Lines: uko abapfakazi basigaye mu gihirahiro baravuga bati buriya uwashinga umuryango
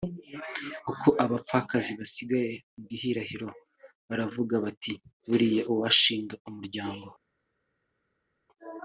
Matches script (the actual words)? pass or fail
pass